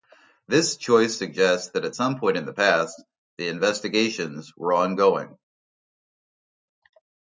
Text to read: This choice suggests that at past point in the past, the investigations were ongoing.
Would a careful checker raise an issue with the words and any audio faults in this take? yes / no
yes